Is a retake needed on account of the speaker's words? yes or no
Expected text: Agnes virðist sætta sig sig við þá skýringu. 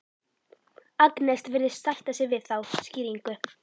yes